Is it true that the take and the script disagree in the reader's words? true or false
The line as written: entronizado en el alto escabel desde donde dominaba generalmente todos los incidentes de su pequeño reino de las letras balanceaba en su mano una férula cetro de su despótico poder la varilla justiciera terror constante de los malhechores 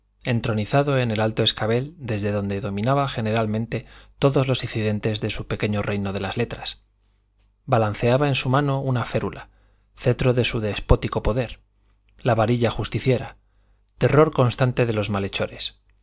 false